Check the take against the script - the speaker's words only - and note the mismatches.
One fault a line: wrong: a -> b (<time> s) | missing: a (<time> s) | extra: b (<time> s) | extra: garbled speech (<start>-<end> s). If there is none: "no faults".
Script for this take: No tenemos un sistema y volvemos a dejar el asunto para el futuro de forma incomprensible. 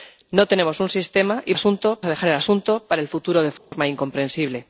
wrong: volvemos -> asunto (1.5 s)